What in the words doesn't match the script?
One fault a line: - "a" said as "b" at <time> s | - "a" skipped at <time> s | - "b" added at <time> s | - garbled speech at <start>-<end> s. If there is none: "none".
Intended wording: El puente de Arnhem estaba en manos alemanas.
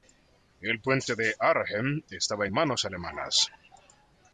none